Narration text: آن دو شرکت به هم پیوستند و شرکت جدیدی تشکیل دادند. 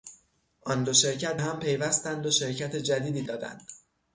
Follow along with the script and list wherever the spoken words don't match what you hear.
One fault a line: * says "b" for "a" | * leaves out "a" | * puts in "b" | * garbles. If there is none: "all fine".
* leaves out "به"
* leaves out "تشکیل"